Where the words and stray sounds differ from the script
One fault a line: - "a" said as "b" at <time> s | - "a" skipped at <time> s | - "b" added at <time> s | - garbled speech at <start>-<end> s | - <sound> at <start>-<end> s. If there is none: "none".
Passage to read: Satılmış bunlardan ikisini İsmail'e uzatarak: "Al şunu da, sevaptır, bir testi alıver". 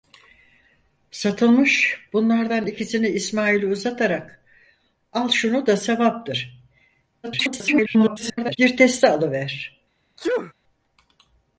- garbled speech at 7.2-8.6 s
- sneeze at 10.2-10.5 s